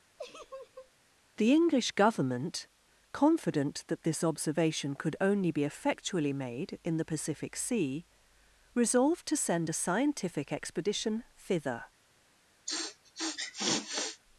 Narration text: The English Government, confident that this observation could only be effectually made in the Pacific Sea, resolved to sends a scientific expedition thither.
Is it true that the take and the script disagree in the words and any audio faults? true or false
true